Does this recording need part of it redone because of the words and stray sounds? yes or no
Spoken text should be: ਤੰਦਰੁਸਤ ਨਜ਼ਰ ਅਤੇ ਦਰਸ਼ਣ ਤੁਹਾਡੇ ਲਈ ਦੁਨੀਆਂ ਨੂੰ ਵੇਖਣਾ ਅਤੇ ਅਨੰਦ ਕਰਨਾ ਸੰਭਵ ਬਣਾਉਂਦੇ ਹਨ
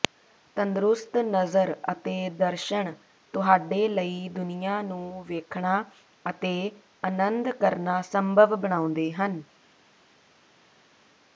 no